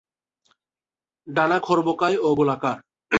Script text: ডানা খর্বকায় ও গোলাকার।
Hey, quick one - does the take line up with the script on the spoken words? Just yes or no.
yes